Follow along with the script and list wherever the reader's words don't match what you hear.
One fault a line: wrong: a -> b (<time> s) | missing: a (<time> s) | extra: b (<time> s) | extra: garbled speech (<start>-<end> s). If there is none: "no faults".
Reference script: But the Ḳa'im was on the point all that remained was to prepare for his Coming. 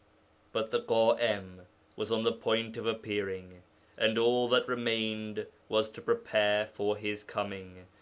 extra: of appearing and (2.8 s)